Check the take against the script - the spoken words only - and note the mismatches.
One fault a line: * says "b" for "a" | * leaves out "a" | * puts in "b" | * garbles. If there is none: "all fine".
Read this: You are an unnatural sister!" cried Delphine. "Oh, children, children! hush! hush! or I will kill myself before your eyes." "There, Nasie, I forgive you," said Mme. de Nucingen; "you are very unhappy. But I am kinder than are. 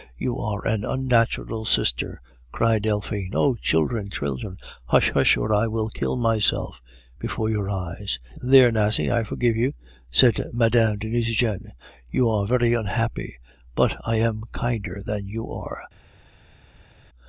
* puts in "you"